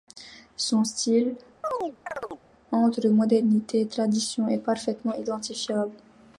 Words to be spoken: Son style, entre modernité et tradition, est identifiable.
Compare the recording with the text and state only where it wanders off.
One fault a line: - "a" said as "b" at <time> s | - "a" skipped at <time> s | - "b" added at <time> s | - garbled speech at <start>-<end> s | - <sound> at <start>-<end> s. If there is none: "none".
- chirp at 1.6-2.4 s
- "parfaitement" added at 4.6 s